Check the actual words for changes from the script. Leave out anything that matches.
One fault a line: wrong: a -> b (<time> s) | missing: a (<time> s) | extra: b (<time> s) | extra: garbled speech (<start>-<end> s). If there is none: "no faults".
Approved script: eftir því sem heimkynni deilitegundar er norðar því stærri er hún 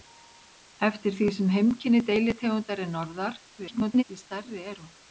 extra: garbled speech (3.6-4.0 s)